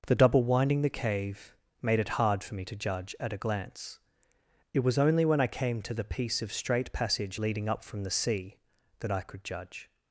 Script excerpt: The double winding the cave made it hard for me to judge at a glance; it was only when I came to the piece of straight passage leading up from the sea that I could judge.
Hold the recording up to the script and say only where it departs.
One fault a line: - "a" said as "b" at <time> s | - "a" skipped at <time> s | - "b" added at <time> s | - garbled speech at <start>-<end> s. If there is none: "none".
none